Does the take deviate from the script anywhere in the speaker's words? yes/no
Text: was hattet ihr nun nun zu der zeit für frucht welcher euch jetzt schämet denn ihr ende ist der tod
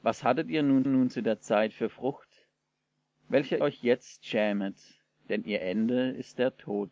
no